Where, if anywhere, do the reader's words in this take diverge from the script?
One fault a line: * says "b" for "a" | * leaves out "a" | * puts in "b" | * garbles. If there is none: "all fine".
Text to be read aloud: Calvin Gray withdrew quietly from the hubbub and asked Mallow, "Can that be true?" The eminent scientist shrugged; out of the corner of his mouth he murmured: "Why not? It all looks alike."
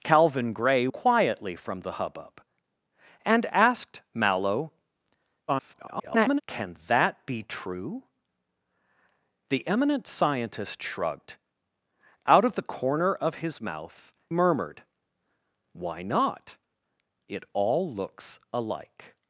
* leaves out "withdrew"
* garbles
* leaves out "he"